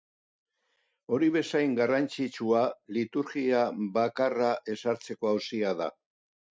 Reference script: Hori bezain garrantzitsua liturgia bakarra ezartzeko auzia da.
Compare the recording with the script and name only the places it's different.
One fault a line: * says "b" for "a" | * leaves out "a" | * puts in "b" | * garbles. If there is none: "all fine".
all fine